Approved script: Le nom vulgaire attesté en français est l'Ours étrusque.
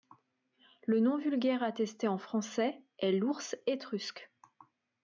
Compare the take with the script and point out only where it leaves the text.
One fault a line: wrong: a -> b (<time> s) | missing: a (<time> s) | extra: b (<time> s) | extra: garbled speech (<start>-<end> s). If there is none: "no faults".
no faults